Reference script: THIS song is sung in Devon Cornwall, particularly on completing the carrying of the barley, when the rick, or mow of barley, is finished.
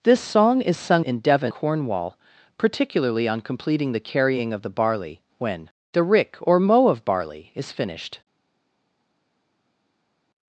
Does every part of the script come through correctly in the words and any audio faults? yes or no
yes